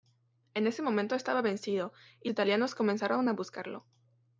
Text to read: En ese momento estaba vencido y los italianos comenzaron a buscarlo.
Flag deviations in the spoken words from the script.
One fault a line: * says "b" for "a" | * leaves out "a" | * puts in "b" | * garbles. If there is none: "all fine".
* leaves out "los"